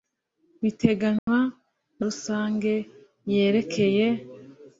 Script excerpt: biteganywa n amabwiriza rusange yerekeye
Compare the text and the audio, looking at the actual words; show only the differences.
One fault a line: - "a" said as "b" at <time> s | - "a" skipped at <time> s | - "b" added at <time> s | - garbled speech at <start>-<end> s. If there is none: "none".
- "amabwiriza" skipped at 2.0 s